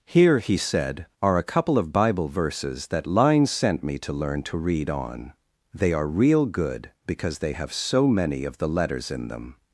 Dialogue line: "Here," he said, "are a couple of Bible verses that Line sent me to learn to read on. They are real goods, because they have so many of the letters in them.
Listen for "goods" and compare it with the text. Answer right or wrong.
wrong